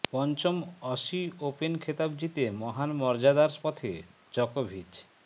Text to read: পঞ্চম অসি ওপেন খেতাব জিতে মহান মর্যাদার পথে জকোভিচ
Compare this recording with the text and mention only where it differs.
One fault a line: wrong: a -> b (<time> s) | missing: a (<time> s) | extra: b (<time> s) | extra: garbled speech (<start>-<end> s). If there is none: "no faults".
no faults